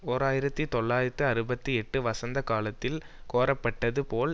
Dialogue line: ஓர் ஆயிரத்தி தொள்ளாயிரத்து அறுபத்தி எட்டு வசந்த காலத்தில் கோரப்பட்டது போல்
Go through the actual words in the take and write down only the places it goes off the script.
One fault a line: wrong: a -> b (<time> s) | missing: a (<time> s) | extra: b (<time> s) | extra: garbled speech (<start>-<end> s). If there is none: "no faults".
no faults